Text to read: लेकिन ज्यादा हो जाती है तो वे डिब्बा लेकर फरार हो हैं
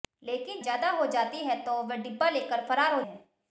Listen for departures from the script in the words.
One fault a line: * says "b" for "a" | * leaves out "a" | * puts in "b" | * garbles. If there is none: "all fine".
all fine